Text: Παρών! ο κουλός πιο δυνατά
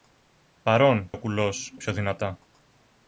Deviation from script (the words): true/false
false